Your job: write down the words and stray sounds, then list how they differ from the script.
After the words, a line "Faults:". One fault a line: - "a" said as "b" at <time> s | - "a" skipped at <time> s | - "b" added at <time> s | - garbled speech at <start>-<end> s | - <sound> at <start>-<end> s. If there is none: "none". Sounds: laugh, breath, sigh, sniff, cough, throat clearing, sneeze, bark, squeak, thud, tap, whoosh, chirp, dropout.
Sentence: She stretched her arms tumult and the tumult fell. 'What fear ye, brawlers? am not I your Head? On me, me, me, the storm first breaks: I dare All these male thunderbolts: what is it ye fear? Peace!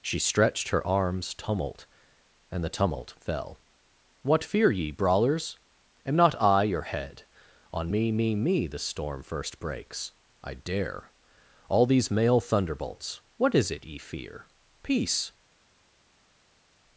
She stretched her arms tumult and the tumult fell. 'What fear ye, brawlers? am not I your Head? On me, me, me, the storm first breaks: I dare All these male thunderbolts: what is it ye fear? Peace!
Faults:
none